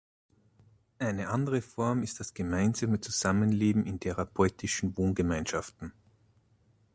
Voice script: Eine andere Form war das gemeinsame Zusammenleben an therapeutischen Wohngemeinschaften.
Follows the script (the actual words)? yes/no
no